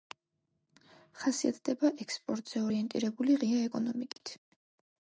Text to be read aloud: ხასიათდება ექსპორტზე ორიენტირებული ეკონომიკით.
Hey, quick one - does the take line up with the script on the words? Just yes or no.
no